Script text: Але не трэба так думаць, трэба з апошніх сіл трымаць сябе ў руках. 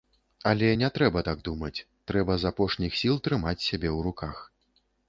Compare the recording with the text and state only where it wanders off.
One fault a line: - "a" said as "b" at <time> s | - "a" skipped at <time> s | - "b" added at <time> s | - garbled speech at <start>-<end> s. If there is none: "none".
none